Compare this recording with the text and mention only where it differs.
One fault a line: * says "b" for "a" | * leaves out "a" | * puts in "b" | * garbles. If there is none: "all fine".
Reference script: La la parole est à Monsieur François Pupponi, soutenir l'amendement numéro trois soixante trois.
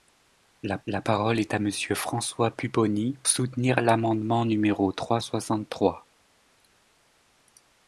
all fine